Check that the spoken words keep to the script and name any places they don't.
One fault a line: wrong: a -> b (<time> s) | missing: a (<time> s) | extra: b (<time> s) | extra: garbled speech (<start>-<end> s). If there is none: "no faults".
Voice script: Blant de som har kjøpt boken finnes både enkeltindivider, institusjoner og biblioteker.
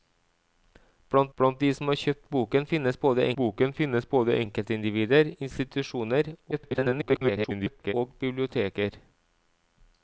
extra: blant (1.4 s)
extra: boken finnes både (3.4 s)
extra: garbled speech (6.5-7.9 s)